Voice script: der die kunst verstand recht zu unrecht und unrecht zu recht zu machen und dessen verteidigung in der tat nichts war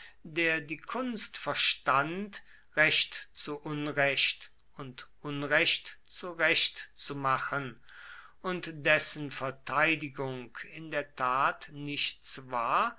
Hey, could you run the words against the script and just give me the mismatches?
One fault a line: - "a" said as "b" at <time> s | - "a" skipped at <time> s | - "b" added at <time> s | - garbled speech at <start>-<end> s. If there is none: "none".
none